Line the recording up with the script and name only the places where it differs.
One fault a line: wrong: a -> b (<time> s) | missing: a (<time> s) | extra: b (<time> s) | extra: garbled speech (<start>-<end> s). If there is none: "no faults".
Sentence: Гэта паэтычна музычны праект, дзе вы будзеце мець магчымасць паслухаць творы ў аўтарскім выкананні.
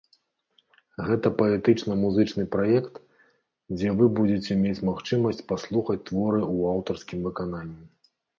no faults